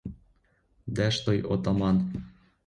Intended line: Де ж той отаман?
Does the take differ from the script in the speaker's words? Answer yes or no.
no